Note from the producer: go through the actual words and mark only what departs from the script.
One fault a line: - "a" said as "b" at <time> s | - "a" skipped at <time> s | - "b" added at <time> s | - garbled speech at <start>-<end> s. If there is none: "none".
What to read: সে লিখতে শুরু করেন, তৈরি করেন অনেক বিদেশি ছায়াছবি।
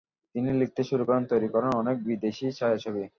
- "সে" said as "তিনি" at 0.3 s